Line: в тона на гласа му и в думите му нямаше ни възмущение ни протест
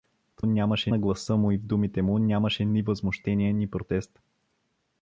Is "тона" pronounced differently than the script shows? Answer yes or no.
yes